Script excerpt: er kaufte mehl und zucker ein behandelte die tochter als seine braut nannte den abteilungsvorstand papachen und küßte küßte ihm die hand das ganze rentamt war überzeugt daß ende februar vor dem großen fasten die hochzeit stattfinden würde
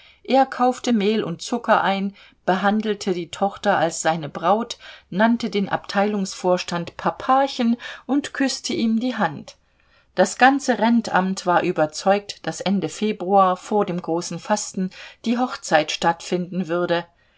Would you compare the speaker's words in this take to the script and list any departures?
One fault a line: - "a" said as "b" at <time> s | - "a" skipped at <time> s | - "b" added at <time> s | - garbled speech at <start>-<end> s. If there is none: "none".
- "küßte" skipped at 8.7 s